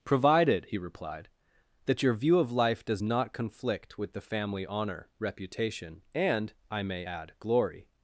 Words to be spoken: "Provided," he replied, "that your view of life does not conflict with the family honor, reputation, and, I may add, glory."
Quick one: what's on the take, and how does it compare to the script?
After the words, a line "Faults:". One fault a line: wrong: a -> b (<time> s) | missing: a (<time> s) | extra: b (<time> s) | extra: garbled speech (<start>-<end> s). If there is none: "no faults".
"Provided," he replied, "that your view of life does not conflict with the family honor, reputation, and, I may add, glory."
Faults:
no faults